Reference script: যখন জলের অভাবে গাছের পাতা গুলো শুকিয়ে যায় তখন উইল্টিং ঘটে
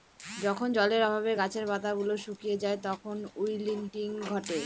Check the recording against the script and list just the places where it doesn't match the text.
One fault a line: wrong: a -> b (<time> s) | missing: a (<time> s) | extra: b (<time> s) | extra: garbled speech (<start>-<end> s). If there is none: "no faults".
no faults